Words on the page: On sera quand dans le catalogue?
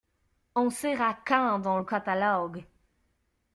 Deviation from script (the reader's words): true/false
false